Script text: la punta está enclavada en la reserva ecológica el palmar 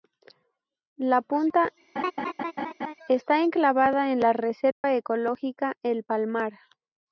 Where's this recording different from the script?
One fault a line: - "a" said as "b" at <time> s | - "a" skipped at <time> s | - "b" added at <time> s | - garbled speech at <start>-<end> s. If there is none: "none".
none